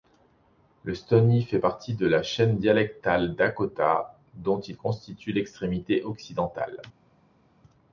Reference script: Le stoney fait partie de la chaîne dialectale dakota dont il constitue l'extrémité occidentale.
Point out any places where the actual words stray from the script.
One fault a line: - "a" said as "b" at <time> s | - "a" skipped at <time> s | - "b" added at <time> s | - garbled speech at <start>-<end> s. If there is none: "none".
none